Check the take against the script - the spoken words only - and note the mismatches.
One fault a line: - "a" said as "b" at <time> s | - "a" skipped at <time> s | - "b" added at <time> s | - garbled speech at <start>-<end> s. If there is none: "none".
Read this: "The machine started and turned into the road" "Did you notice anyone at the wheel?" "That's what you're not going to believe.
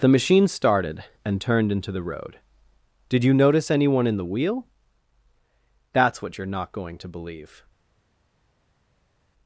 - "at" said as "in" at 4.1 s